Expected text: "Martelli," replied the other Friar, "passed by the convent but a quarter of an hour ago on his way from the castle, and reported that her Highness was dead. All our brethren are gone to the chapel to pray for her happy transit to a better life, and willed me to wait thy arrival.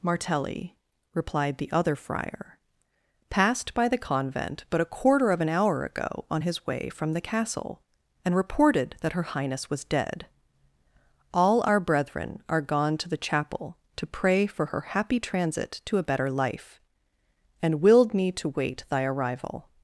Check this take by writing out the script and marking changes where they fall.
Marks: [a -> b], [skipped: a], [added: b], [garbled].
"Martelli," replied the other Friar, "passed by the convent but a quarter of an hour ago on his way from the castle, and reported that her Highness was dead. All our brethren are gone to the chapel to pray for her happy transit to a better life, and willed me to wait thy arrival.